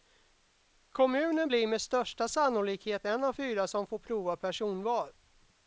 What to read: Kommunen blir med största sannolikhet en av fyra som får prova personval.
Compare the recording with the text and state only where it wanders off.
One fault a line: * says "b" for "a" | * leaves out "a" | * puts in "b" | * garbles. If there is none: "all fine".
all fine